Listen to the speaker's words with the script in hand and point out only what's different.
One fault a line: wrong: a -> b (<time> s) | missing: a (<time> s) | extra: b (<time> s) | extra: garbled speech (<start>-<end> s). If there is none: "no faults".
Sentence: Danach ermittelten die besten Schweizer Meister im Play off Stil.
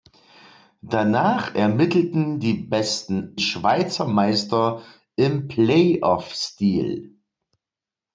no faults